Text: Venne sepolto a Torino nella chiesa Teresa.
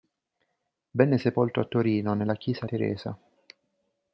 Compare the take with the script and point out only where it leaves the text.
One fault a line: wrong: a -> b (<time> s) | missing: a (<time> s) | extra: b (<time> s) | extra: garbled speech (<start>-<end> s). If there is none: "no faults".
no faults